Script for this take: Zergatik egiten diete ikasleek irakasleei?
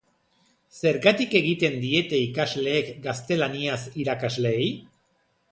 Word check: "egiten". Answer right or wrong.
right